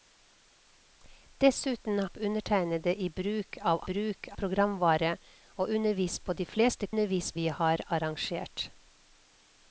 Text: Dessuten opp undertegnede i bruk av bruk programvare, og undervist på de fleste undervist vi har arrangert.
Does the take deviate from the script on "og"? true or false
false